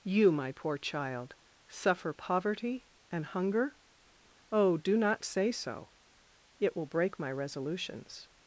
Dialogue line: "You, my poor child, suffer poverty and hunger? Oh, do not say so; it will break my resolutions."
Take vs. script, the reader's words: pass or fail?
pass